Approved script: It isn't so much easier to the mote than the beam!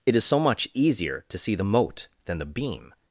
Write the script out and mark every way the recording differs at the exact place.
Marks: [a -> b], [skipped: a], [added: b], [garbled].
It [isn't -> is] so much easier to [added: see] the mote than the beam!